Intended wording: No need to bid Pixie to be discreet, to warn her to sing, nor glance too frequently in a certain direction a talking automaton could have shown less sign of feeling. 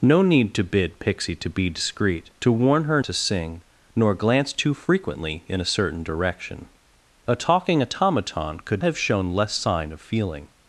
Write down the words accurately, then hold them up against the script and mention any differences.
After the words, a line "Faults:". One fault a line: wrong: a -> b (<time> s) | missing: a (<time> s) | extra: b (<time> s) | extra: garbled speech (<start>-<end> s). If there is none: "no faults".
No need to bid Pixie to be discreet, to warn her to sing, nor glance too frequently in a certain direction a talking automaton could have shown less sign of feeling.
Faults:
no faults